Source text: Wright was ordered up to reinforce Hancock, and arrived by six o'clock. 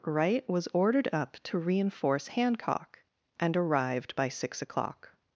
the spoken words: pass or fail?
pass